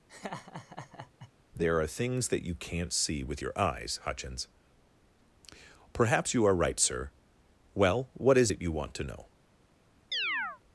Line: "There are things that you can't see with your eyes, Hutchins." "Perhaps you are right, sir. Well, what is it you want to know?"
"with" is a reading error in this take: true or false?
false